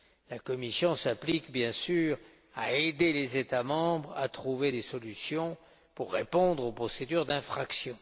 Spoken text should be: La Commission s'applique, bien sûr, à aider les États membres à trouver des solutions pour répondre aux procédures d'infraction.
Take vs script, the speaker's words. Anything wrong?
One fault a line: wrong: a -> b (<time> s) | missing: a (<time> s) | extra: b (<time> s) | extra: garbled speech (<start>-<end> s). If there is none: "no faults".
no faults